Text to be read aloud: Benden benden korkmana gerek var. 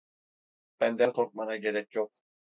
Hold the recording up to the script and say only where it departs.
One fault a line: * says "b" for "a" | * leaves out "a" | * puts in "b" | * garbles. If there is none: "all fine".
* leaves out "benden"
* says "yok" for "var"